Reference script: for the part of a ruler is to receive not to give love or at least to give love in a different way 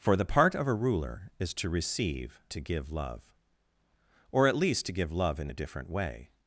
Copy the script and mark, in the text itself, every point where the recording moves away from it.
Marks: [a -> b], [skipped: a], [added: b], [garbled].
for the part of a ruler is to receive [skipped: not] to give love or at least to give love in a different way